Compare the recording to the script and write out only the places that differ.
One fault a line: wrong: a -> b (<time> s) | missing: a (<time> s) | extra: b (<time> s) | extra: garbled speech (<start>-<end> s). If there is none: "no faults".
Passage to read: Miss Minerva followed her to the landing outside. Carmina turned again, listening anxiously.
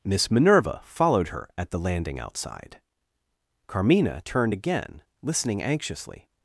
wrong: to -> at (1.6 s)